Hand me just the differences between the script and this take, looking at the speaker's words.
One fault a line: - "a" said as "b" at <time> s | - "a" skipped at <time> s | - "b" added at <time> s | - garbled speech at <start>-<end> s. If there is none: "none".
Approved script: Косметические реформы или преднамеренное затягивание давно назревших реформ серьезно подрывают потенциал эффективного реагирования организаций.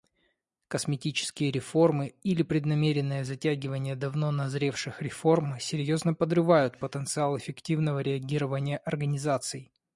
none